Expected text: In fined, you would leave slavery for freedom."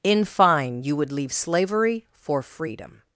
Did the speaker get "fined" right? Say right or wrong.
wrong